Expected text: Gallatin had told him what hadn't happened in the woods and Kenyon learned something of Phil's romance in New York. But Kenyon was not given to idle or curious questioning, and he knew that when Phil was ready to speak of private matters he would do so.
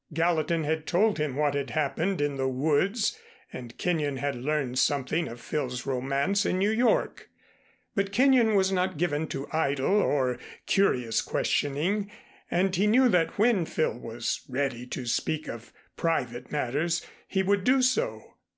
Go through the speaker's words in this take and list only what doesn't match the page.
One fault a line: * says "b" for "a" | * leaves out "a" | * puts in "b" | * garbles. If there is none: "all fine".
* says "had" for "hadn't"
* puts in "had"